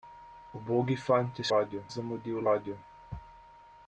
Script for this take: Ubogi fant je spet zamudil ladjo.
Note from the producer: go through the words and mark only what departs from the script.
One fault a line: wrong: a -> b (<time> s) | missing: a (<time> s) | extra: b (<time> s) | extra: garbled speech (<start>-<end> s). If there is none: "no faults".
wrong: spet -> ladjo (1.5 s)